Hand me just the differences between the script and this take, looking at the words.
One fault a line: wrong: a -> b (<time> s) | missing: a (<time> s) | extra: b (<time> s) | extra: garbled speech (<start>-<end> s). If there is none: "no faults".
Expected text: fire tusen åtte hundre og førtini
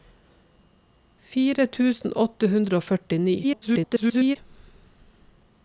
extra: garbled speech (3.4-4.4 s)